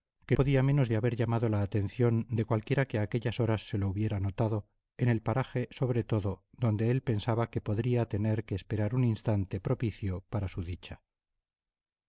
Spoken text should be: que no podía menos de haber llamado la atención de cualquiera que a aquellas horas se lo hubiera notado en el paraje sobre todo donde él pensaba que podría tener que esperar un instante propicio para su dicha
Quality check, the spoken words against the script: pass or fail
fail